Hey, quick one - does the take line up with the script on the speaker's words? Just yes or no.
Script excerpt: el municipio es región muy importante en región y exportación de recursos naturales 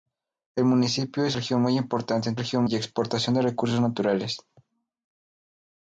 yes